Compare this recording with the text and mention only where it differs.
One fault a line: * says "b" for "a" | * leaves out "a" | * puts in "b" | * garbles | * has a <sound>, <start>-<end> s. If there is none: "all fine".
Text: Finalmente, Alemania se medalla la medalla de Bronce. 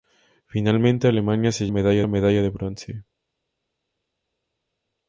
all fine